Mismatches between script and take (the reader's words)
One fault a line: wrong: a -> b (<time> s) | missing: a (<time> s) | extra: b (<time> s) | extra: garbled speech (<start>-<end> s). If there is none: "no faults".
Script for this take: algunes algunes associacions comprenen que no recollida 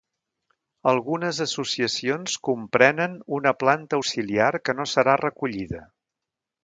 missing: algunes (1.4 s)
extra: una planta auxiliar (3.4 s)
extra: serà (4.9 s)